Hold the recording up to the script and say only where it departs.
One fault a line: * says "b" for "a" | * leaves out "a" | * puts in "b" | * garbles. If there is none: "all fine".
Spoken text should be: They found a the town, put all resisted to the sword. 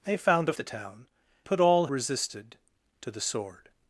all fine